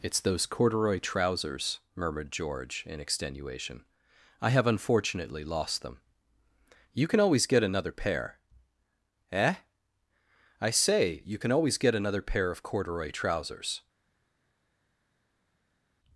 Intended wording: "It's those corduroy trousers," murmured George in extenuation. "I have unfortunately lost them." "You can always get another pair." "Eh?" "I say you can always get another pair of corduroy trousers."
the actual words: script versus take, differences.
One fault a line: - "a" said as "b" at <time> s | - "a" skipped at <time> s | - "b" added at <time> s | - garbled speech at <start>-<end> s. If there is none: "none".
none